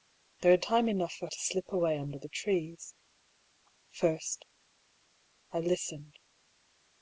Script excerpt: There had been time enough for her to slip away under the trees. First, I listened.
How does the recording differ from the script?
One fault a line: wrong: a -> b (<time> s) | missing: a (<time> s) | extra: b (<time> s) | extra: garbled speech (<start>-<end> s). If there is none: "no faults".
missing: been (0.6 s)
missing: her (1.3 s)